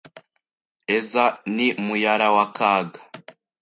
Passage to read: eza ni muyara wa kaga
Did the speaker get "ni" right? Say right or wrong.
right